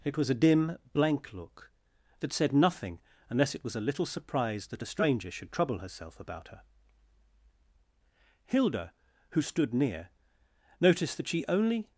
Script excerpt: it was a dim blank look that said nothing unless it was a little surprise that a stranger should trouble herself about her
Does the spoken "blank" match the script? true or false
true